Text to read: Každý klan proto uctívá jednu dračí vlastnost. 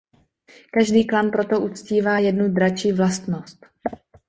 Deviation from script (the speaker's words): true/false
false